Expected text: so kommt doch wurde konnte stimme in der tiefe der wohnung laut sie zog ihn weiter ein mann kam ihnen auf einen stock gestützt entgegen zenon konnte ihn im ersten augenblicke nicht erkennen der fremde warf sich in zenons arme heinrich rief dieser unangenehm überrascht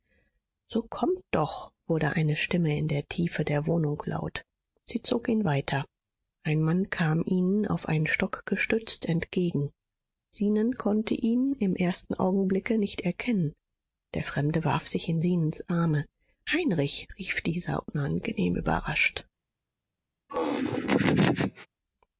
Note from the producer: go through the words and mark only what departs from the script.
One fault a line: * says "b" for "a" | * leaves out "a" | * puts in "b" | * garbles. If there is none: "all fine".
* says "eine" for "konnte"